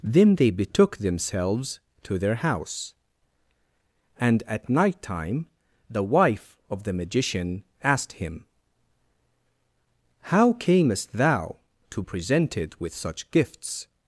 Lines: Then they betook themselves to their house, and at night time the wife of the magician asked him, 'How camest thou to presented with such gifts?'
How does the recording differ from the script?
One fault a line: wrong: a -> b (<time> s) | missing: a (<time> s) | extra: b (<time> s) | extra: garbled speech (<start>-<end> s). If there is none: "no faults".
no faults